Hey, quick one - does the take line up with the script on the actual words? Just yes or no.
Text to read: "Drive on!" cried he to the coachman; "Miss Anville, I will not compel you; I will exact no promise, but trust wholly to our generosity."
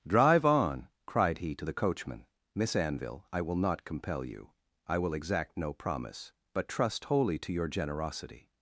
no